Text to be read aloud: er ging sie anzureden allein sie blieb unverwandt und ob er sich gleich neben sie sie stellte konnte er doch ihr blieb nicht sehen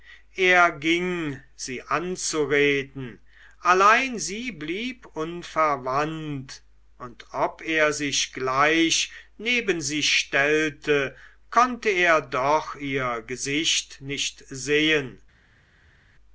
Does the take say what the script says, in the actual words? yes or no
no